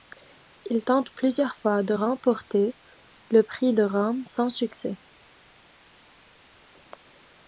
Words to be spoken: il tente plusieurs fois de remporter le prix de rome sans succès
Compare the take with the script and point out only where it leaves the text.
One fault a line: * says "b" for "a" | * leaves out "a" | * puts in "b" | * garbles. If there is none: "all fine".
all fine